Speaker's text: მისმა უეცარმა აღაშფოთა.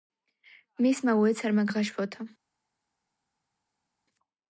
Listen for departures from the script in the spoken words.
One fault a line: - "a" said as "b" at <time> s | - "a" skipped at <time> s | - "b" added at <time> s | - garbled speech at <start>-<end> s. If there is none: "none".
none